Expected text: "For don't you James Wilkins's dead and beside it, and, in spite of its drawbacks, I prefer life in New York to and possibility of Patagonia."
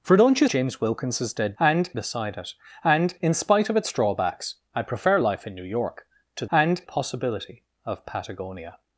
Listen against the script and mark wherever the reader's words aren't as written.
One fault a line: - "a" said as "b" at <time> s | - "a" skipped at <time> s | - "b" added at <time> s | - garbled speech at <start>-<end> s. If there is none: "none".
none